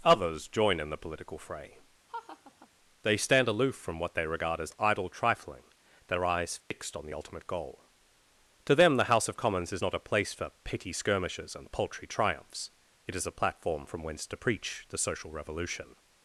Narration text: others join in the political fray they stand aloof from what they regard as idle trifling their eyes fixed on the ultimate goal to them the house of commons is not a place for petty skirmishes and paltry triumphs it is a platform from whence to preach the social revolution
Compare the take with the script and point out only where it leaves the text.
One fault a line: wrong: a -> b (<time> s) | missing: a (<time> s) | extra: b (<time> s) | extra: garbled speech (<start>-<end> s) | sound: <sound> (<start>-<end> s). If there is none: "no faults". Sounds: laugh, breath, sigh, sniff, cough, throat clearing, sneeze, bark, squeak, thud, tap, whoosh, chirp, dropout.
sound: laugh (2.1-2.7 s)
sound: dropout (6.6-6.7 s)